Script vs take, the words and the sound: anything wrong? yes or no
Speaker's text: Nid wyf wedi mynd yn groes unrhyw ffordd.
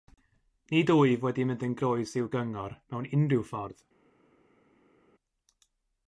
yes